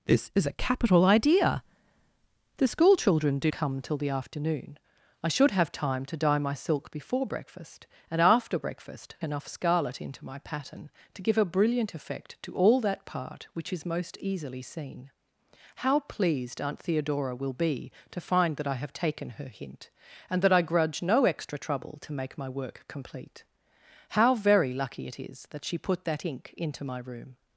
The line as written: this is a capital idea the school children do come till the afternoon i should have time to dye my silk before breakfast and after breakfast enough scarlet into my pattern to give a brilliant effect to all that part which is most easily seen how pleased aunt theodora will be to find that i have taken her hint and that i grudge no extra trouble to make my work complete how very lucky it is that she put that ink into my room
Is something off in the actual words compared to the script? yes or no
no